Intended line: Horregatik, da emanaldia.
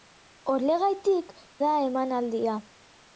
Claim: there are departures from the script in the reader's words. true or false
false